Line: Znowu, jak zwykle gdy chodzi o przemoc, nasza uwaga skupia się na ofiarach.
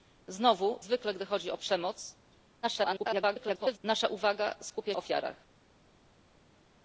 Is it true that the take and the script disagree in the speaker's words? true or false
true